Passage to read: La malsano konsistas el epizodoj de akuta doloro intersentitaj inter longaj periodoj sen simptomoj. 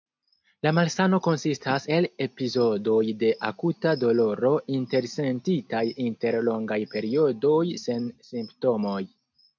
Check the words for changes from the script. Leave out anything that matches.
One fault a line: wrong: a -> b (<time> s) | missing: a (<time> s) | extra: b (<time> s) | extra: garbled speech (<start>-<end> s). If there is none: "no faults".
no faults